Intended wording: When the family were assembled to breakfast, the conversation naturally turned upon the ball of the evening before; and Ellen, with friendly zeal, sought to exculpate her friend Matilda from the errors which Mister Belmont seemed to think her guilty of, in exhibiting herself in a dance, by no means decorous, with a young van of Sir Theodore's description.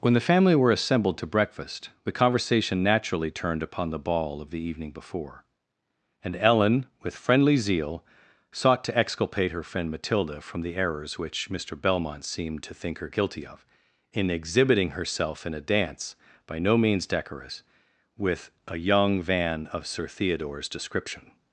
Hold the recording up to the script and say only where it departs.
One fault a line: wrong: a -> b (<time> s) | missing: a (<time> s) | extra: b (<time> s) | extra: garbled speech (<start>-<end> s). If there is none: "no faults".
no faults